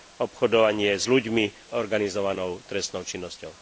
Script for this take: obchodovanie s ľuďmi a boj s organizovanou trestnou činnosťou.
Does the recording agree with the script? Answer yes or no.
no